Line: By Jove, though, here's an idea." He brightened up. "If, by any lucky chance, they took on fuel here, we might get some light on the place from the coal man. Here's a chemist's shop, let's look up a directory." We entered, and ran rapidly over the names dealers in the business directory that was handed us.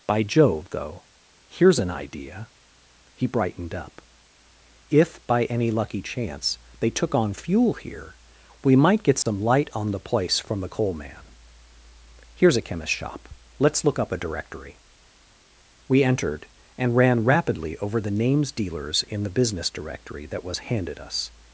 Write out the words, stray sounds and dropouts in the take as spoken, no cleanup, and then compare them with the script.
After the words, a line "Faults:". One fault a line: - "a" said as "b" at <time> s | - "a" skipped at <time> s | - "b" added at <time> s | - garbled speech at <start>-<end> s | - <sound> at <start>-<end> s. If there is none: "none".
By Jove, though, here's an idea." He brightened up. "If, by any lucky chance, they took on fuel here, we might get some light on the place from the coal man. Here's a chemist's shop, let's look up a directory." We entered, and ran rapidly over the names dealers in the business directory that was handed us.
Faults:
- dropout at 9.2-9.3 s